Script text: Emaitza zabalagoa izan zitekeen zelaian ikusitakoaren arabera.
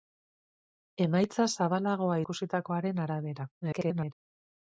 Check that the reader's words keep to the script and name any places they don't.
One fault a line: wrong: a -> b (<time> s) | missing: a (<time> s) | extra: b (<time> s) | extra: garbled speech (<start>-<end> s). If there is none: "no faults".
missing: izan zitekeen zelaian (2.2 s)
extra: garbled speech (3.6-4.1 s)